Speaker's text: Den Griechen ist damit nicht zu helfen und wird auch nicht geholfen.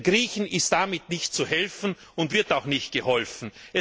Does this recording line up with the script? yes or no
yes